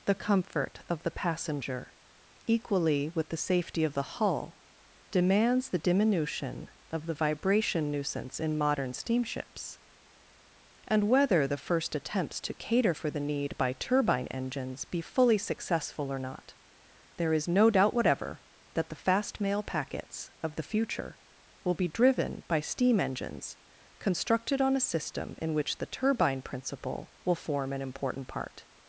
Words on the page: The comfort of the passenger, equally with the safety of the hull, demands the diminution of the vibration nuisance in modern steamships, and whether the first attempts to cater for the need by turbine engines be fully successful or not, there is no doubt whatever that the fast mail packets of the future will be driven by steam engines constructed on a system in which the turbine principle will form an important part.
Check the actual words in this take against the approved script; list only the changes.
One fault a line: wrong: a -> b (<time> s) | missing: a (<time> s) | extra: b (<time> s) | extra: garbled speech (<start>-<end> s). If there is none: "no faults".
no faults